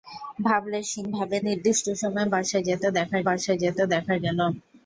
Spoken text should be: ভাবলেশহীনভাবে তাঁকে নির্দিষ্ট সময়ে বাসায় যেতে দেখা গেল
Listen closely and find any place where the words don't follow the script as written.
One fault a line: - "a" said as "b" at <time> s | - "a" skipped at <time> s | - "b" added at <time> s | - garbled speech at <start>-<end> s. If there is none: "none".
- "তাঁকে" skipped at 1.4 s
- "বাসায় যেতে দেখা" added at 3.3 s